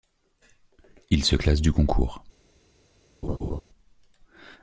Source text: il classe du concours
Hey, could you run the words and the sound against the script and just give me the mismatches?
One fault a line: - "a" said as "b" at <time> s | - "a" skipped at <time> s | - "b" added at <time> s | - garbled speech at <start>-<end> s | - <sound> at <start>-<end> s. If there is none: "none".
- "se" added at 1.2 s
- laugh at 3.2-3.6 s